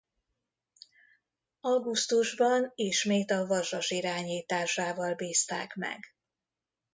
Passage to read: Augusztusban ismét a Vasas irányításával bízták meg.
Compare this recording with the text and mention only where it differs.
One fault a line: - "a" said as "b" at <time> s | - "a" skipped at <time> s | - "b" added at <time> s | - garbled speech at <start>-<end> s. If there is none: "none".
none